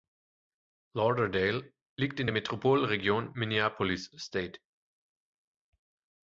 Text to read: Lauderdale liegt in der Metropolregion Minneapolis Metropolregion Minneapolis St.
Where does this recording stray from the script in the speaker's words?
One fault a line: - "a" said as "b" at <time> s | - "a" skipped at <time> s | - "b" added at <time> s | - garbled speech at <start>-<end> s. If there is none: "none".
- "Metropolregion Minneapolis" skipped at 4.1 s